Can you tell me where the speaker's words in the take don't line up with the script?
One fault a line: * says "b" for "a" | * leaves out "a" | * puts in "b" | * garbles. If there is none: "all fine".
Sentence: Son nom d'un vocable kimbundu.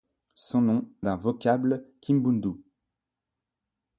all fine